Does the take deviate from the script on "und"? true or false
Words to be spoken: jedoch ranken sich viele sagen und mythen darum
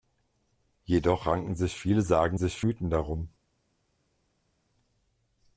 true